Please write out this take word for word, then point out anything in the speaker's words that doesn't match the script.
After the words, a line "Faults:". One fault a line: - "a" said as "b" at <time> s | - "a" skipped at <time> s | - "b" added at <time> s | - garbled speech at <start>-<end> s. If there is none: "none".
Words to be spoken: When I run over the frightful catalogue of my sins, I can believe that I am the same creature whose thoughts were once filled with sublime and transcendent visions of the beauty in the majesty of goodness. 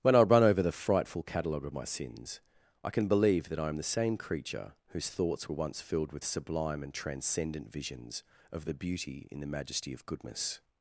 When I run over the frightful catalogue of my sins, I can believe that I am the same creature whose thoughts were once filled with sublime and transcendent visions of the beauty in the majesty of goodness.
Faults:
none